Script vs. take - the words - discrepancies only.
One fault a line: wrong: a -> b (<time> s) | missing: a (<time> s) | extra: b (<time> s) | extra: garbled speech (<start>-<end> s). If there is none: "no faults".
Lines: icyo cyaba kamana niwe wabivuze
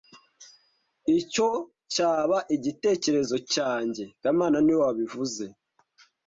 extra: igitekerezo cyanjye (2.5 s)